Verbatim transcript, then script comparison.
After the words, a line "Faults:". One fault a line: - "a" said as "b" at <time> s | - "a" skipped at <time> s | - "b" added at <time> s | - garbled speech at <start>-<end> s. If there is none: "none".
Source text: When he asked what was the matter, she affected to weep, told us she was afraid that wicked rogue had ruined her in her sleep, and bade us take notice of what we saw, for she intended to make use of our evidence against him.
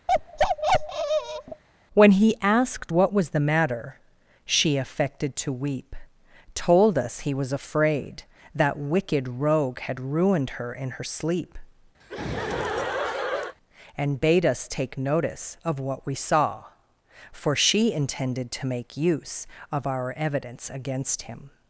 When he asked what was the matter, she affected to weep, told us he was afraid that wicked rogue had ruined her in her sleep, and bade us take notice of what we saw, for she intended to make use of our evidence against him.
Faults:
- "she" said as "he" at 7.2 s